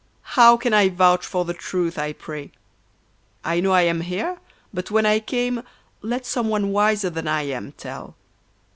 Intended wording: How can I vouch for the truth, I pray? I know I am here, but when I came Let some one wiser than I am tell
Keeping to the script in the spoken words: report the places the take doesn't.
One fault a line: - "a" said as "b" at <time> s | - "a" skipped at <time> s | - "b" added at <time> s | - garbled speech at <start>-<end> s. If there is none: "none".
none